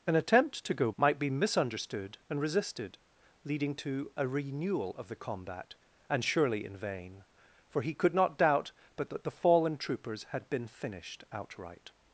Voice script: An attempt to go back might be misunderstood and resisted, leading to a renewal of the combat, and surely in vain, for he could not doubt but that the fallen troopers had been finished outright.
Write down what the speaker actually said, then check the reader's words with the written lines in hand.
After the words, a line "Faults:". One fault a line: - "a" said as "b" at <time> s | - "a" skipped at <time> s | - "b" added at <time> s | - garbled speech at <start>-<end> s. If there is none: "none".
An attempt to go might be misunderstood and resisted, leading to a renewal of the combat, and surely in vain, for he could not doubt but that the fallen troopers had been finished outright.
Faults:
- "back" skipped at 0.9 s